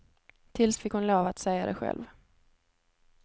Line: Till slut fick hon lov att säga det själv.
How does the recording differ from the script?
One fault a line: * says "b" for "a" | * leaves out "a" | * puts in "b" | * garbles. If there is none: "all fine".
* leaves out "slut"